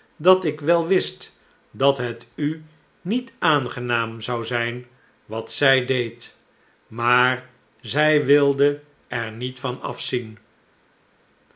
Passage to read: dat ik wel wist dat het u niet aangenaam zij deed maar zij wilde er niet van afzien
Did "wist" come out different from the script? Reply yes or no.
no